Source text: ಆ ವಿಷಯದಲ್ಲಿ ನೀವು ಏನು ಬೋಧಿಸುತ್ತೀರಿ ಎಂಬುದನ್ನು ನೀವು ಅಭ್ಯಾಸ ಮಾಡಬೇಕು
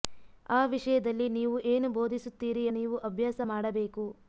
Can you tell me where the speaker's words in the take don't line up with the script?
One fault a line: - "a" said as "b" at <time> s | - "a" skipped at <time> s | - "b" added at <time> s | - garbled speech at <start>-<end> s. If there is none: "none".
- "ಎಂಬುದನ್ನು" skipped at 2.6 s